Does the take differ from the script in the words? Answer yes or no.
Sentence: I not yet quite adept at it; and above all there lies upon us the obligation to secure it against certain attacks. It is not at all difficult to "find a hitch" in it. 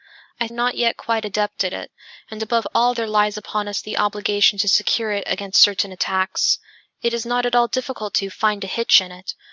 no